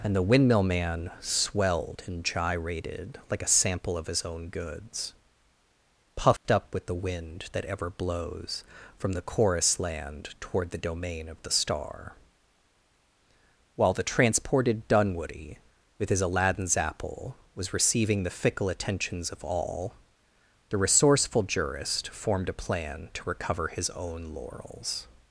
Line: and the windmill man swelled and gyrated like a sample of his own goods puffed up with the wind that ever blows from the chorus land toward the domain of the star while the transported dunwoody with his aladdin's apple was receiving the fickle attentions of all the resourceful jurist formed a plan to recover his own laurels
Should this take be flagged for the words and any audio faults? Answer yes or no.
yes